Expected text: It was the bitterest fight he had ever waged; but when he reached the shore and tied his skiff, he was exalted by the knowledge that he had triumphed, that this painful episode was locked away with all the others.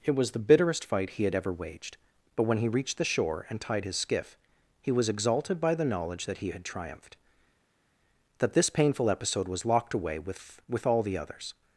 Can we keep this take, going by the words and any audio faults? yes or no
no